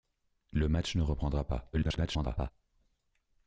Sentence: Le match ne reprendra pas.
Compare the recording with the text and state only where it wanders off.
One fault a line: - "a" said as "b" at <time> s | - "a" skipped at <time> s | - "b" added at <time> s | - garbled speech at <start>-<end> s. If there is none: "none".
- garbled speech at 1.7-2.5 s